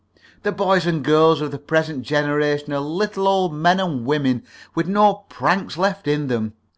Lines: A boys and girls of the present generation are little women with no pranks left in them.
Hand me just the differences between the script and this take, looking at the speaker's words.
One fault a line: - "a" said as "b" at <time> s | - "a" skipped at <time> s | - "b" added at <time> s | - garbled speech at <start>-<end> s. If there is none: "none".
- "A" said as "The" at 0.4 s
- "old men and" added at 3.3 s